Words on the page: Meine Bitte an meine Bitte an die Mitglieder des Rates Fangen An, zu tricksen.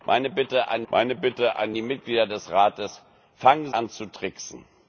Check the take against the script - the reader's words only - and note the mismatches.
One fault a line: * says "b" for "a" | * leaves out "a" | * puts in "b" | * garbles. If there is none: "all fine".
all fine